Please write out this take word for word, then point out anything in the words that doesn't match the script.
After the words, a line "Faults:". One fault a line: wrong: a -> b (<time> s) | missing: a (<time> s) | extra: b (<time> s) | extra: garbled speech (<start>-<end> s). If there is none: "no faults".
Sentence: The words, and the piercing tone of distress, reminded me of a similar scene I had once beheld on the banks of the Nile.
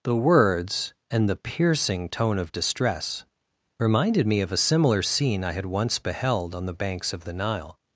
The words, and the piercing tone of distress, reminded me of a similar scene I had once beheld on the banks of the Nile.
Faults:
no faults